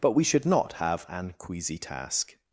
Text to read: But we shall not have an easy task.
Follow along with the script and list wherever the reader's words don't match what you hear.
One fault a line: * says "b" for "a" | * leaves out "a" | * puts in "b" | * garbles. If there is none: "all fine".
* says "should" for "shall"
* says "queasy" for "easy"